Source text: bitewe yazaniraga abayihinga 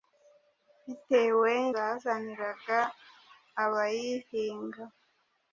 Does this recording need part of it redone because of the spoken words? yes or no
no